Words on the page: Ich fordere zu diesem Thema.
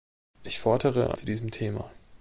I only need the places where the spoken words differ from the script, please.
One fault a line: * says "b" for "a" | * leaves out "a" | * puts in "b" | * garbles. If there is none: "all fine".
all fine